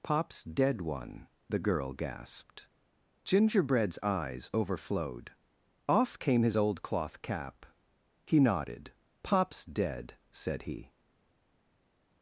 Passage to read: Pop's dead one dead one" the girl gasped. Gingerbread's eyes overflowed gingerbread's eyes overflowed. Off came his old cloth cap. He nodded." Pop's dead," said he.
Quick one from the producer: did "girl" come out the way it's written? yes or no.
yes